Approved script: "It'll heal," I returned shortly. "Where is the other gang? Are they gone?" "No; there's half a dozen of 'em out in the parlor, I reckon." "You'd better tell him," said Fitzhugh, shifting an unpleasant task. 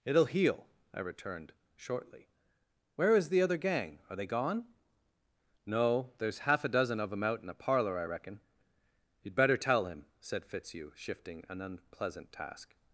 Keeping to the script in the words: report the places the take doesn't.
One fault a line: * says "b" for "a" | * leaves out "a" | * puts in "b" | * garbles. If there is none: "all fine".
all fine